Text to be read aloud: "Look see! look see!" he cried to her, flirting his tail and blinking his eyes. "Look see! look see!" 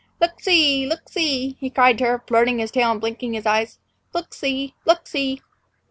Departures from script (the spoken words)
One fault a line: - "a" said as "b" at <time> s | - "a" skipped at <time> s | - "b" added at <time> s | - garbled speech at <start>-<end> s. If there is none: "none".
none